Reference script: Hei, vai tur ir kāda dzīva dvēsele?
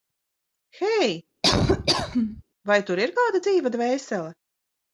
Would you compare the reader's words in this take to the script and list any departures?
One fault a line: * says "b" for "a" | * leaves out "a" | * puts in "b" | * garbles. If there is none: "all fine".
all fine